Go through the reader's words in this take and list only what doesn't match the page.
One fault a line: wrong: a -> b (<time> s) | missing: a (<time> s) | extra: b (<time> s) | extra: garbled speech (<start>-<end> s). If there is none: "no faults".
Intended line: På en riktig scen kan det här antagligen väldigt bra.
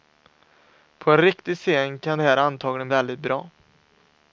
no faults